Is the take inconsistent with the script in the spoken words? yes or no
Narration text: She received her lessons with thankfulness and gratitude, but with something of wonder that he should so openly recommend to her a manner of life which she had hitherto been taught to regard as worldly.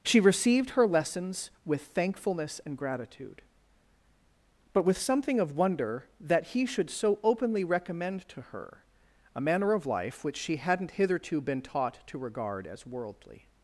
yes